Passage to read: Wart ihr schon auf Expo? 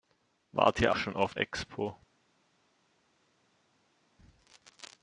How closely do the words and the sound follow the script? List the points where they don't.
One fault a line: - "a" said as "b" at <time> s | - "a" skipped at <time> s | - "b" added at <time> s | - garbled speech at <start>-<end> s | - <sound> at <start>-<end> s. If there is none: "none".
none